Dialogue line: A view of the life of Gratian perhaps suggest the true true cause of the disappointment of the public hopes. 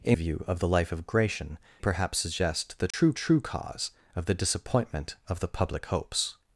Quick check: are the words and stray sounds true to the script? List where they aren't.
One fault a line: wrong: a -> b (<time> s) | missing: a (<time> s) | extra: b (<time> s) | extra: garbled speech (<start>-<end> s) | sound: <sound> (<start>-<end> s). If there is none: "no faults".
sound: dropout (2.9-2.9 s)